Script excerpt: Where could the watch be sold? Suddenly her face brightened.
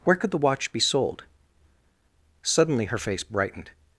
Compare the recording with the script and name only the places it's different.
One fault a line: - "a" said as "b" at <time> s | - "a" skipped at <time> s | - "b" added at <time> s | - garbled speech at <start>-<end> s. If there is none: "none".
none